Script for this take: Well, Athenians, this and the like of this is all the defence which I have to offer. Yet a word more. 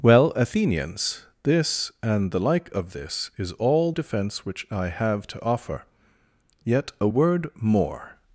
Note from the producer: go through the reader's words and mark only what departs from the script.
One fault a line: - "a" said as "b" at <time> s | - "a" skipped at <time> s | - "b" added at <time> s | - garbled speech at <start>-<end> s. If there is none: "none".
- "the" skipped at 3.9 s